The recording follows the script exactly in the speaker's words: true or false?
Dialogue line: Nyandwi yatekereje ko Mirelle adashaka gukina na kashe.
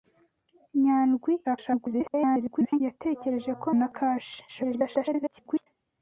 false